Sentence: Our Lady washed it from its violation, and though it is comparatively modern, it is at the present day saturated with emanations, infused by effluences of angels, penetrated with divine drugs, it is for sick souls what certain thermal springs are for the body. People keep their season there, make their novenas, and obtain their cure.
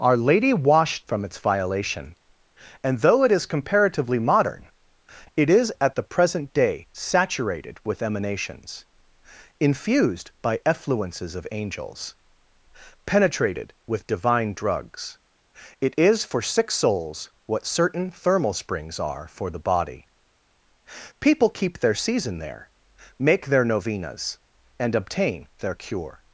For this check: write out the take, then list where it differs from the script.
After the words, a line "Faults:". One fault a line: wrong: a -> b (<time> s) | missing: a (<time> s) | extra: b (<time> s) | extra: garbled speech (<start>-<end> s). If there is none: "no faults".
Our Lady washed from its violation, and though it is comparatively modern, it is at the present day saturated with emanations, infused by effluences of angels, penetrated with divine drugs, it is for sick souls what certain thermal springs are for the body. People keep their season there, make their novenas, and obtain their cure.
Faults:
missing: it (1.1 s)